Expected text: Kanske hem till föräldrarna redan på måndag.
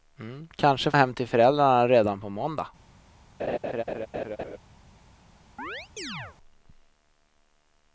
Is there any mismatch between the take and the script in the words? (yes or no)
no